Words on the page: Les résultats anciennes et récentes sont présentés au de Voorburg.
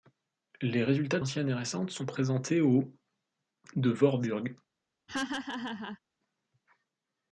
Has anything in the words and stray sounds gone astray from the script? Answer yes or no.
yes